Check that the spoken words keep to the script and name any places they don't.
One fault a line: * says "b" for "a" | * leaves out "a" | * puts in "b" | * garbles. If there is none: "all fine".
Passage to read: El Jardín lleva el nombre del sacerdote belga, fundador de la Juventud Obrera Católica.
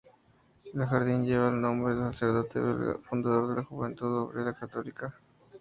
all fine